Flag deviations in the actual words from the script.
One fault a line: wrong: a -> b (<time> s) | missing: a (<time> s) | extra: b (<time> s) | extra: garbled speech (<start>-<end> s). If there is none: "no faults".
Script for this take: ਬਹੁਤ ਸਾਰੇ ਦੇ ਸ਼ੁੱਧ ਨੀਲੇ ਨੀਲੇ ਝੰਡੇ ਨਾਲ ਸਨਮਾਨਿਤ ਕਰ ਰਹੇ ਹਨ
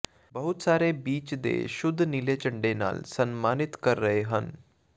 extra: ਬੀਚ (1.0 s)
missing: ਨੀਲੇ (2.4 s)